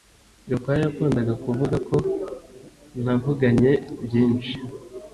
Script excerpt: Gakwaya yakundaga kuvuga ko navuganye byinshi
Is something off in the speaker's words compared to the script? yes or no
no